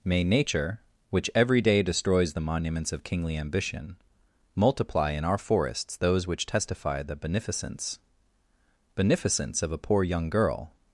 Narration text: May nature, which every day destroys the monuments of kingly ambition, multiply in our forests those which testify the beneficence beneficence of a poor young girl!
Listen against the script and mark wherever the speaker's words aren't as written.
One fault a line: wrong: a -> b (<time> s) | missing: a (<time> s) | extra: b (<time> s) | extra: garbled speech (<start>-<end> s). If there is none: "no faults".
no faults